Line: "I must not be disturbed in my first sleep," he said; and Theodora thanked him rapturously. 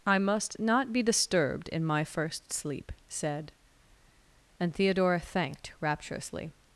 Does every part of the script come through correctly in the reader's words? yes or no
no